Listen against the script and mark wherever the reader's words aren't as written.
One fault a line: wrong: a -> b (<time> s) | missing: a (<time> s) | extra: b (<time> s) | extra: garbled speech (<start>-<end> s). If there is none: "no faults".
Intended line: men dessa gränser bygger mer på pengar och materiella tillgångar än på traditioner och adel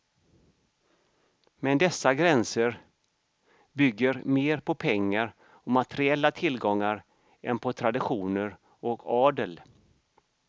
no faults